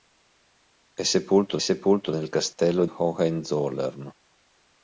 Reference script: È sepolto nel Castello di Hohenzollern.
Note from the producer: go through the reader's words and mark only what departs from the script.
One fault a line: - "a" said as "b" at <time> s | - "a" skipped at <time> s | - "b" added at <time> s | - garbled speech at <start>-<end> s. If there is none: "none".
- "sepolto" added at 1.6 s
- "di" skipped at 2.8 s